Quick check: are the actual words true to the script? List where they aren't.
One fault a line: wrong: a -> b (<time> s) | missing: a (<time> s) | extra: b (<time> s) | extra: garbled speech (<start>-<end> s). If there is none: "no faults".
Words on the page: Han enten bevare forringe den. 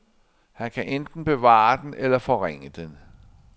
extra: kan (0.7 s)
extra: den eller (1.8 s)